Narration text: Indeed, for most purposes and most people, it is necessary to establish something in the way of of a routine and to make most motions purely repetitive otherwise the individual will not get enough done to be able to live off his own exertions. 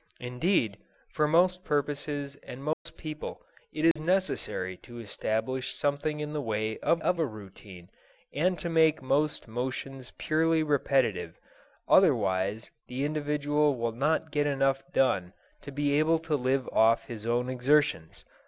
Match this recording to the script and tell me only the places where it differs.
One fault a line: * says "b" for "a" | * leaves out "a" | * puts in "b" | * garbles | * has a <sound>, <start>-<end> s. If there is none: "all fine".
* has a dropout, 2.7-2.9 s
* has a dropout, 3.9-4.0 s